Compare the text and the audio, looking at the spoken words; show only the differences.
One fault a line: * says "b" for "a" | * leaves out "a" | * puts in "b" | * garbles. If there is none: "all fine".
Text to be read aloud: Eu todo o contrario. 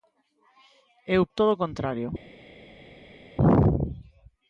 all fine